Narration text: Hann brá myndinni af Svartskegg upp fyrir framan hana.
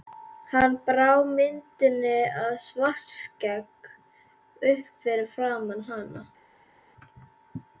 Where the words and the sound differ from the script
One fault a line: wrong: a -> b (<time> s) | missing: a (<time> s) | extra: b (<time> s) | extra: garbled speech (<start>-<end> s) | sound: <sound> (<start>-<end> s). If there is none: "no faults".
no faults